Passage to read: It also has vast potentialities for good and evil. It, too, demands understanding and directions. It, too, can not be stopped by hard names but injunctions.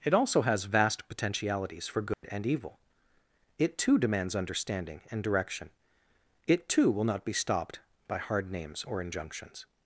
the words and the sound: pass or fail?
fail